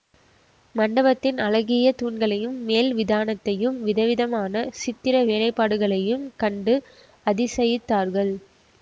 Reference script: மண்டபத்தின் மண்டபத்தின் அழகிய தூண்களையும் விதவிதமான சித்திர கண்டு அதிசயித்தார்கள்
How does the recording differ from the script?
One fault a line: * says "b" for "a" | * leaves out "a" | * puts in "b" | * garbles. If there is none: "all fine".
* leaves out "மண்டபத்தின்"
* puts in "மேல் விதானத்தையும்"
* puts in "வேலைப்பாடுகளையும்"